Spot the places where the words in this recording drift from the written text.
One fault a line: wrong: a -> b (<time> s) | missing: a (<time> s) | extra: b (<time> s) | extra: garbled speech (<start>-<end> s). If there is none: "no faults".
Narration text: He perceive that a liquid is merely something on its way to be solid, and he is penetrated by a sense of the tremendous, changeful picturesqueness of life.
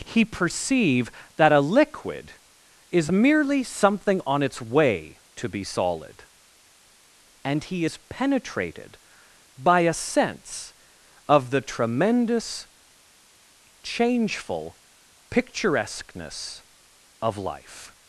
no faults